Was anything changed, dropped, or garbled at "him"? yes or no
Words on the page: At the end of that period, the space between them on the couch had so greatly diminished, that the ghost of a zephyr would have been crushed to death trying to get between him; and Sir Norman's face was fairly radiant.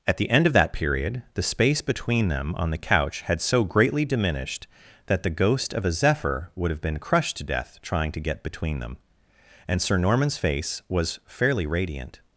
yes